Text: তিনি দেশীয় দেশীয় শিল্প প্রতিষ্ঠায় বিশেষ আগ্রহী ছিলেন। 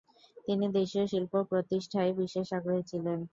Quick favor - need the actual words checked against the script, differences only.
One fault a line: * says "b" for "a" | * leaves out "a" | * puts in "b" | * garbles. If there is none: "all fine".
* leaves out "দেশীয়"